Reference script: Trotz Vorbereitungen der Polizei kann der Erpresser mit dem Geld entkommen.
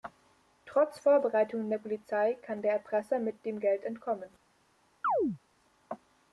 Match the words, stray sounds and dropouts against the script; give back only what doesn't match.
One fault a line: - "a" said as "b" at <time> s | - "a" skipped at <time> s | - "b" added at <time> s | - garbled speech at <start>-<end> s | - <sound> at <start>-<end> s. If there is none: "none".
- chirp at 5.0-5.4 s